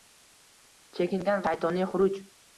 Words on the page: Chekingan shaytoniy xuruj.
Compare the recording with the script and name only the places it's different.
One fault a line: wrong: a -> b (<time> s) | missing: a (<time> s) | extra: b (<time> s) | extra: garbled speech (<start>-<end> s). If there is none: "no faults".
no faults